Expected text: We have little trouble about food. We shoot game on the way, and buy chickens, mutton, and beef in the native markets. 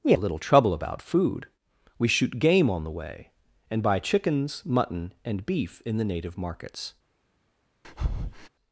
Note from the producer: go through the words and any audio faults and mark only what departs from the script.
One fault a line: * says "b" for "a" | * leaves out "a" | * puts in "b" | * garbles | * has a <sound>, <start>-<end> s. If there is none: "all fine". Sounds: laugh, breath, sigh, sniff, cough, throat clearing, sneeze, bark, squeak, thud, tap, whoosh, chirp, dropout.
* leaves out "have"
* has a breath, 7.8-8.5 s